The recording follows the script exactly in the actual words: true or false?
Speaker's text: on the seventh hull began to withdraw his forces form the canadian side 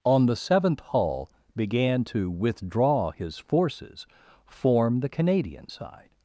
true